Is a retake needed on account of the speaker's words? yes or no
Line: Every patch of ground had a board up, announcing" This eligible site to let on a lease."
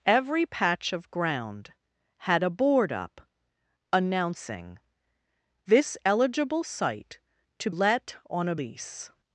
no